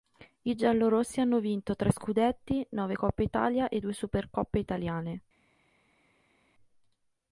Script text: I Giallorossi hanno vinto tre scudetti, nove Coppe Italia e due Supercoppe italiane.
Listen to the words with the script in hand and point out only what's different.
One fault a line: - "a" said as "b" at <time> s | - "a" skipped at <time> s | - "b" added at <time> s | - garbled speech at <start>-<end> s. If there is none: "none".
none